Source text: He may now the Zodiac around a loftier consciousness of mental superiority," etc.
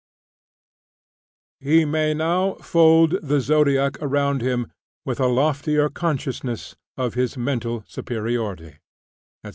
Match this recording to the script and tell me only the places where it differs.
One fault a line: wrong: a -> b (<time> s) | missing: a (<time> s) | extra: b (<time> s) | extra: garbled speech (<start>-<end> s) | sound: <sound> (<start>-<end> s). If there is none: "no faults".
extra: fold (2.6 s)
extra: him with (4.4 s)
extra: his (7.1 s)